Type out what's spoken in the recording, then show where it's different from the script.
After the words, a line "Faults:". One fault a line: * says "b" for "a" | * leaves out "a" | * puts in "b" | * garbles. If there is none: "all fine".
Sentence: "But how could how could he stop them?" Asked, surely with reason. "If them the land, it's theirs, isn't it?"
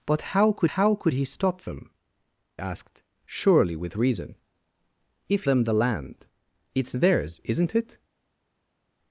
"But how could how could he stop them?" Asked, surely with reason. "If them the land, it's theirs, isn't it?"
Faults:
all fine